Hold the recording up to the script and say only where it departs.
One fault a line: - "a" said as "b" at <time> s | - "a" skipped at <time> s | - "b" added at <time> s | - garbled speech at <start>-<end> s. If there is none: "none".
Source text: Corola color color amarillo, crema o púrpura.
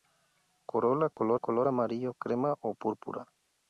none